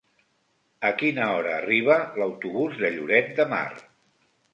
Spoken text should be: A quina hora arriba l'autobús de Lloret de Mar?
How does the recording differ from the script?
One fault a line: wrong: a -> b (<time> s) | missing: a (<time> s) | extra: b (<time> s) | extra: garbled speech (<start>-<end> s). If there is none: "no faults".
no faults